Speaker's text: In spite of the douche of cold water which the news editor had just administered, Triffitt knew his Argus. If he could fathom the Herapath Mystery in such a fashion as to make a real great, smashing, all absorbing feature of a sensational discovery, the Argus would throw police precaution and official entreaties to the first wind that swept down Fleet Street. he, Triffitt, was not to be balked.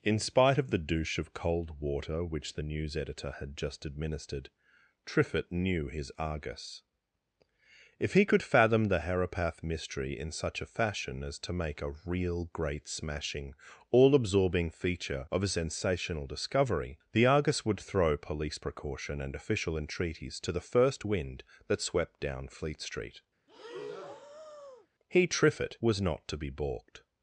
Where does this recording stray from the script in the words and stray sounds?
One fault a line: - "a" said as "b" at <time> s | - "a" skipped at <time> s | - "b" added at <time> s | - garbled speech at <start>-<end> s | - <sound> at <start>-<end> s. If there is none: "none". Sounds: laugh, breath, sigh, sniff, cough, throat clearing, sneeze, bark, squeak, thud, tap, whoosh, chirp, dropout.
- breath at 23.5-24.9 s